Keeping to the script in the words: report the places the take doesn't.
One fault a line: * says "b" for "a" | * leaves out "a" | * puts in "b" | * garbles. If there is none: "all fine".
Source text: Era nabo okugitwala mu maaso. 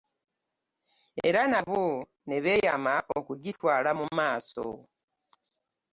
* puts in "ne beeyama"